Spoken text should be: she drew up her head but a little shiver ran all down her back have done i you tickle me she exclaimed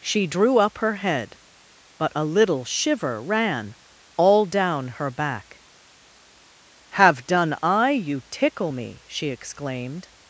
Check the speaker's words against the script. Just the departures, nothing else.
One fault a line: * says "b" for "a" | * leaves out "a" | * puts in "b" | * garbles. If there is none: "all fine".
all fine